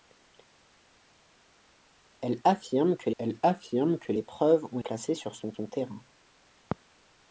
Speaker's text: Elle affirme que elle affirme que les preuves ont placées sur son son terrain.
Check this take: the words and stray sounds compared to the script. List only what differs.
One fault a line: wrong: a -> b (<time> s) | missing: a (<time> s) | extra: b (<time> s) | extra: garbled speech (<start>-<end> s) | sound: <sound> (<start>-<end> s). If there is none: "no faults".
no faults